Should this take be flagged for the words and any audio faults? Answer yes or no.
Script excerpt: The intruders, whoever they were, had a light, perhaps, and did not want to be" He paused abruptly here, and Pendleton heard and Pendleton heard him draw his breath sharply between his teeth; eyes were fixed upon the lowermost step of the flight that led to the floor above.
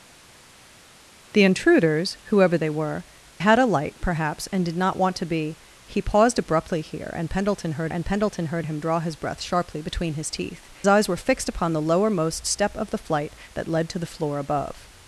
no